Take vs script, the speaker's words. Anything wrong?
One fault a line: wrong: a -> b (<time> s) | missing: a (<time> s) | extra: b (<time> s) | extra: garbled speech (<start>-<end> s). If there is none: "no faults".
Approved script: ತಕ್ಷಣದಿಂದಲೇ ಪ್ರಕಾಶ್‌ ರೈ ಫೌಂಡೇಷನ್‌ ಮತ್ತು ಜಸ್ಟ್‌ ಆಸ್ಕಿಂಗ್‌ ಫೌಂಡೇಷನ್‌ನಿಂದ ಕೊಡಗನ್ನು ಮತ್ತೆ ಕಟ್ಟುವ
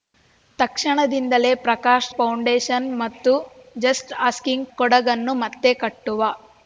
missing: ರೈ (2.1 s)
missing: ಫೌಂಡೇಷನ್‌ನಿಂದ (4.7 s)